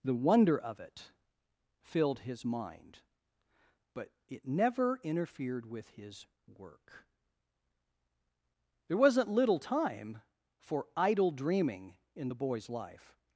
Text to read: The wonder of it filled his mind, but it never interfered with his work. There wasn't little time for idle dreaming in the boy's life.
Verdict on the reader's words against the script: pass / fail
pass